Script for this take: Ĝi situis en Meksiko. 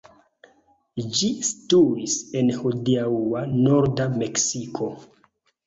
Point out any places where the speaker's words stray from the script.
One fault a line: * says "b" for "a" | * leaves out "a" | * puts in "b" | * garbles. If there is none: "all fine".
* puts in "hodiaŭa norda"